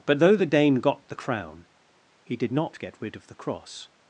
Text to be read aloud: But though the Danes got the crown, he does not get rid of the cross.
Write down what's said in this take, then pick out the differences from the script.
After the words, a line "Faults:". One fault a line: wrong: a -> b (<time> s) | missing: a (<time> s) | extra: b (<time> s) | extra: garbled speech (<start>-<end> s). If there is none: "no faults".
But though the Dane got the crown, he did not get rid of the cross.
Faults:
wrong: Danes -> Dane (0.5 s)
wrong: does -> did (2.4 s)